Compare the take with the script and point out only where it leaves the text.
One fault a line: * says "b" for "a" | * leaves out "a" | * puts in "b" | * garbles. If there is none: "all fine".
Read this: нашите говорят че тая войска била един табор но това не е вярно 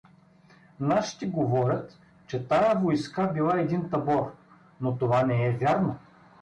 all fine